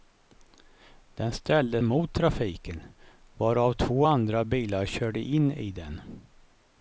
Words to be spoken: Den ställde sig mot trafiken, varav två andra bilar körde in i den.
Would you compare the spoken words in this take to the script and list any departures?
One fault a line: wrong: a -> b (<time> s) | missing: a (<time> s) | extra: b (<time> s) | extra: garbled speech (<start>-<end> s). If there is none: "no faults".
missing: sig (1.8 s)